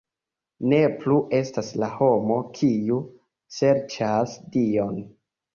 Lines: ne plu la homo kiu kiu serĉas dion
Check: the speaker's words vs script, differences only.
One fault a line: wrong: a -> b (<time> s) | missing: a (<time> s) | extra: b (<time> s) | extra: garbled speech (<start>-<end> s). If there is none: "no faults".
extra: estas (1.4 s)
missing: kiu (3.0 s)